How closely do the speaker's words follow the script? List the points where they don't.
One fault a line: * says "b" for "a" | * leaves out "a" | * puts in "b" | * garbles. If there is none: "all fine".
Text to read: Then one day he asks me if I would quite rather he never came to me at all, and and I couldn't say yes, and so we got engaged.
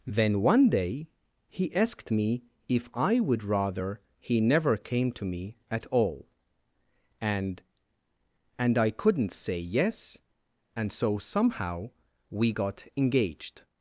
* says "asked" for "asks"
* leaves out "quite"
* puts in "somehow"